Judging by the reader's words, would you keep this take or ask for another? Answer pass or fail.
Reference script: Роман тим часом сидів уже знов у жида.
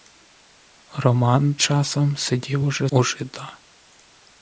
fail